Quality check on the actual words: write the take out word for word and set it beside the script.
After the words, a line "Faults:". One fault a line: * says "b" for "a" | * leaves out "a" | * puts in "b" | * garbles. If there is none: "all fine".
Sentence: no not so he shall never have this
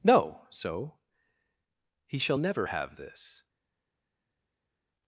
no so he shall never have this
Faults:
* leaves out "not"